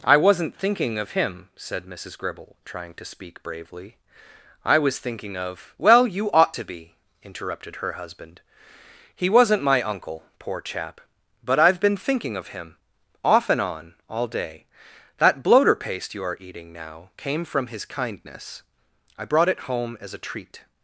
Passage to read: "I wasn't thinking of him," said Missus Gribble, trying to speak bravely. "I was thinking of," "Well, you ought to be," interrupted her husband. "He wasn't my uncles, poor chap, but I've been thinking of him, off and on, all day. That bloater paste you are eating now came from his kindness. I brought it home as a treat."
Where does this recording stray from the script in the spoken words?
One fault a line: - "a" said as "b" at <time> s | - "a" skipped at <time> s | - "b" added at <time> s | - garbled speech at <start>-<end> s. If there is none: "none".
- "uncles" said as "uncle" at 9.8 s